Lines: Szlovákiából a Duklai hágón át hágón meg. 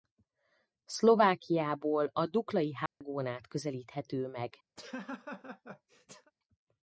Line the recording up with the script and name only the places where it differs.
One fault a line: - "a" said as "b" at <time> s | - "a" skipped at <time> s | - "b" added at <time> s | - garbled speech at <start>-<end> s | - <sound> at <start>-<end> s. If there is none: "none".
- dropout at 2.9-3.0 s
- "hágón" said as "közelíthető" at 3.5 s
- laugh at 4.8-6.3 s